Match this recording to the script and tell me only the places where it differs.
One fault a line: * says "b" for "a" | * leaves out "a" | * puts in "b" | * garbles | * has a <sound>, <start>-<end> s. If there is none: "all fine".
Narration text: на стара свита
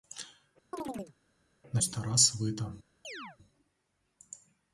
* has a chirp, 0.7-1.1 s
* has a chirp, 3.0-3.4 s